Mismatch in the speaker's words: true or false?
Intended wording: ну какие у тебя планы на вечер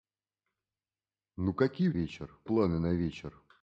true